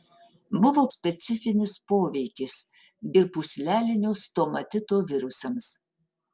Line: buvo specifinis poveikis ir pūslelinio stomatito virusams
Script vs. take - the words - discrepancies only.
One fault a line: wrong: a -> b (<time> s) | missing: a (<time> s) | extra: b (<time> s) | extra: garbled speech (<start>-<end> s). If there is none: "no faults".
no faults